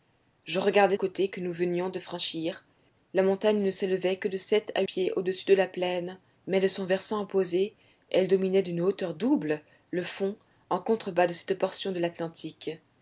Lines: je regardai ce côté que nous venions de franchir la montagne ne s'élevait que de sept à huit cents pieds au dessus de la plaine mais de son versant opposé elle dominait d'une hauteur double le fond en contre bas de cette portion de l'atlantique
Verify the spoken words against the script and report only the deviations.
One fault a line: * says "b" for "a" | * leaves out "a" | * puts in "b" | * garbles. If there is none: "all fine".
* leaves out "ce"
* leaves out "huit cents"